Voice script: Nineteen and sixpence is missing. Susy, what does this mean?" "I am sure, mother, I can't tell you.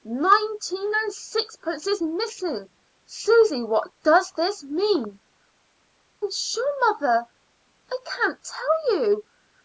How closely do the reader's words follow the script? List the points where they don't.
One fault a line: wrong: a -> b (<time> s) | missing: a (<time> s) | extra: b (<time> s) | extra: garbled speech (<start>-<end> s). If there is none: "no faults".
missing: I (5.2 s)